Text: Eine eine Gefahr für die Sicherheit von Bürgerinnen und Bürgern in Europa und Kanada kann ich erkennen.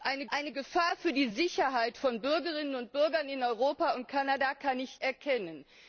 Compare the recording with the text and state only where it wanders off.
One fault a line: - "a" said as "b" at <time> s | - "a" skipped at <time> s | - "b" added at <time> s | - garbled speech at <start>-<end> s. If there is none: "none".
none